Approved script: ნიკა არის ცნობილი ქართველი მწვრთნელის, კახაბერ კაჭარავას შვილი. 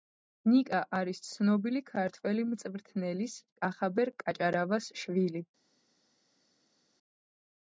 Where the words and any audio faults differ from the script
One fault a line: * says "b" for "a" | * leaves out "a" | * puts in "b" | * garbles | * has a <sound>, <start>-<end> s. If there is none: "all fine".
all fine